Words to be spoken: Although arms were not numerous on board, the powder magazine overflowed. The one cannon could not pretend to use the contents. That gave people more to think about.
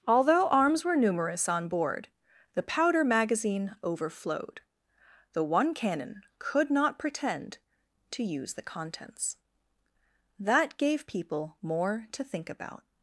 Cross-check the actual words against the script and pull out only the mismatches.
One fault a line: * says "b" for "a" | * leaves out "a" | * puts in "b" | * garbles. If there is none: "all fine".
* leaves out "not"